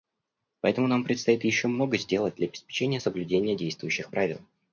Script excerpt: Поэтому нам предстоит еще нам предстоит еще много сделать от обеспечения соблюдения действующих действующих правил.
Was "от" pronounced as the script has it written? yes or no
no